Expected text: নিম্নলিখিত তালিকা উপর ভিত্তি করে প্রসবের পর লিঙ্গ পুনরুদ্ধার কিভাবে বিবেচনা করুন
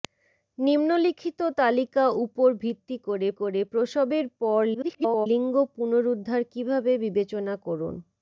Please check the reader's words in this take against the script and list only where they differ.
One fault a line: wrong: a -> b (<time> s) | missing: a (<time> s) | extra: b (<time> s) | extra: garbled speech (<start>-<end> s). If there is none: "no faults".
extra: করে (3.4 s)
extra: garbled speech (4.7-5.3 s)